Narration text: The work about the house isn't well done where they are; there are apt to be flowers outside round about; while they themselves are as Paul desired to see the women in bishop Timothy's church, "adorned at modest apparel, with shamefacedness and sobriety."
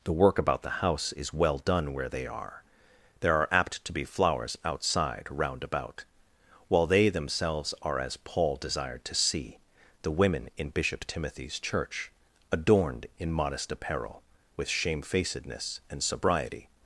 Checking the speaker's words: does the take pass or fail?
fail